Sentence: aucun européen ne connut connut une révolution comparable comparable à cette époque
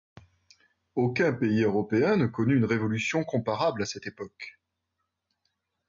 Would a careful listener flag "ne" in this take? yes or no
no